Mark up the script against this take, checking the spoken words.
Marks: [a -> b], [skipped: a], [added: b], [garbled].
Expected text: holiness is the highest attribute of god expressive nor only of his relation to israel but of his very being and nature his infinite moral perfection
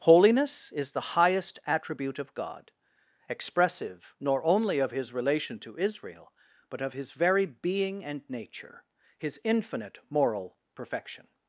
holiness is the highest attribute of god expressive nor only of his relation to israel but of his very being and nature his infinite moral perfection